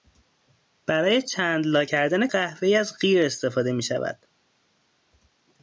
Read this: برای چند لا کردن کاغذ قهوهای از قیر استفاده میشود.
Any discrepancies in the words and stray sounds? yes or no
yes